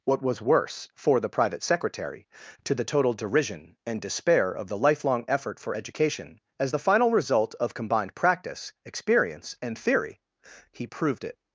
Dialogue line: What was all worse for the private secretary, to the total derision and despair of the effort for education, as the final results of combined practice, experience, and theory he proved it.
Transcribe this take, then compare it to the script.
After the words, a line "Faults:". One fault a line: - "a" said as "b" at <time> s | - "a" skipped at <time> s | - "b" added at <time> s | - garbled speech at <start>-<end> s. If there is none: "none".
What was worse for the private secretary, to the total derision and despair of the lifelong effort for education, as the final result of combined practice, experience, and theory he proved it.
Faults:
- "all" skipped at 0.4 s
- "lifelong" added at 4.8 s
- "results" said as "result" at 7.1 s